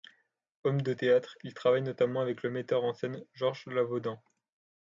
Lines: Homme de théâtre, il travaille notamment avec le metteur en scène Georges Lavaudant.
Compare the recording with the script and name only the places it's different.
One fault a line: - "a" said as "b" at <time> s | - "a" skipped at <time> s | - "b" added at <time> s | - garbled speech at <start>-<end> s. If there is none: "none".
none